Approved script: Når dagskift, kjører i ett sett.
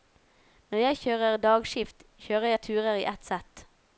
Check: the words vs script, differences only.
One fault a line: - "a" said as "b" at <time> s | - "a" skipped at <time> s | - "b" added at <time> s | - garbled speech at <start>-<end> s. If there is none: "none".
- "jeg kjører" added at 0.8 s
- "jeg turer" added at 2.5 s